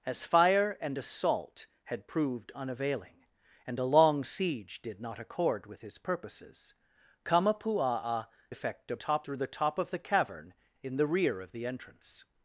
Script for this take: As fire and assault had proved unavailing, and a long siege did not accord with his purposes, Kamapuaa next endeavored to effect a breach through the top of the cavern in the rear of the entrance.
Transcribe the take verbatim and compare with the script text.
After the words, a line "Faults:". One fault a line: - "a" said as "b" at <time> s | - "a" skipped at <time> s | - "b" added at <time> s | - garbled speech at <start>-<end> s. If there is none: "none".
As fire and assault had proved unavailing, and a long siege did not accord with his purposes, Kamapuaa effect a top through the top of the cavern in the rear of the entrance.
Faults:
- "next endeavored to" skipped at 8.2 s
- "breach" said as "top" at 8.9 s